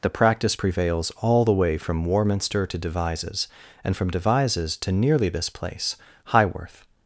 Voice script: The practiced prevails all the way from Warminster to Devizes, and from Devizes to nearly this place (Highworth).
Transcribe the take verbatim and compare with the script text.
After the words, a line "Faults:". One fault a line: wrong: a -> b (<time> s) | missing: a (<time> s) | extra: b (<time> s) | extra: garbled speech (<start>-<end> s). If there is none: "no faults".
The practice prevails all the way from Warminster to Devizes, and from Devizes to nearly this place (Highworth).
Faults:
wrong: practiced -> practice (0.1 s)